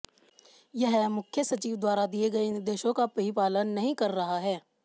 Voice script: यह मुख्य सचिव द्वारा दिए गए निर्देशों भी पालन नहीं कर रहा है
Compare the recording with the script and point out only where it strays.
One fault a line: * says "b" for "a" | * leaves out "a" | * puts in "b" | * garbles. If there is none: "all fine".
* puts in "का"